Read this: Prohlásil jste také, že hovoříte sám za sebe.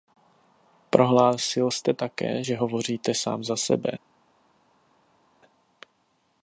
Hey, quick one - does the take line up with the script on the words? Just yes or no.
yes